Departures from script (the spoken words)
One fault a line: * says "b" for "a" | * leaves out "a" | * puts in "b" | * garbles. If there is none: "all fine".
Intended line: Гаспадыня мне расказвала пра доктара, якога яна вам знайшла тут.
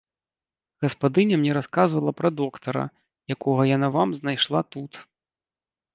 all fine